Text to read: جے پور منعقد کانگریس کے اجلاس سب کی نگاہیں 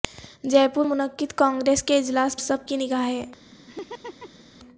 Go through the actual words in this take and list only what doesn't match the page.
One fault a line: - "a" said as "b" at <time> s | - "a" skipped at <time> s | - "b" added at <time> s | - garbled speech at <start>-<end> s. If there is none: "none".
none